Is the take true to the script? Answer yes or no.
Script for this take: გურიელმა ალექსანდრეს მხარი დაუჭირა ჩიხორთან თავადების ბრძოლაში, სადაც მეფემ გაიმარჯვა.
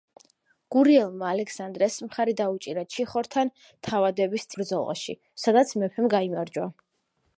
yes